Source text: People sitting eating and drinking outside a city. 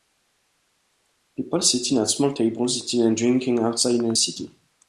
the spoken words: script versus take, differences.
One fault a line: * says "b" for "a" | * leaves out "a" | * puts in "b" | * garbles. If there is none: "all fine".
* puts in "at small tables"
* puts in "in"